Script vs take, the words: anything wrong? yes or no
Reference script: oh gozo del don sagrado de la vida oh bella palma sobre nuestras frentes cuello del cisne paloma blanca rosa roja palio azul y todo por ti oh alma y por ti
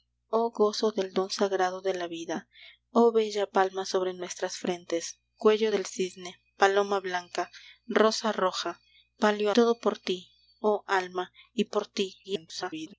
yes